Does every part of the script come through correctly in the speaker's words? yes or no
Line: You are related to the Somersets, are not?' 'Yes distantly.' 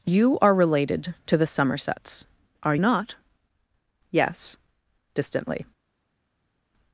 yes